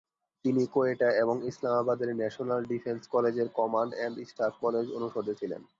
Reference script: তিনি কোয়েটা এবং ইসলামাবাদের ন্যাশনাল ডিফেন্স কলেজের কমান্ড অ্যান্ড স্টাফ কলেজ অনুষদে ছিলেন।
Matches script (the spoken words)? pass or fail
pass